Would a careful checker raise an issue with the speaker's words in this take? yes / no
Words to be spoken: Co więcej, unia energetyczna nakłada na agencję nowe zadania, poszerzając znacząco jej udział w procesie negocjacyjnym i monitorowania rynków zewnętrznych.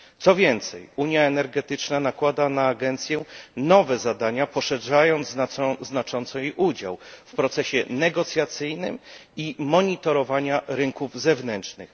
no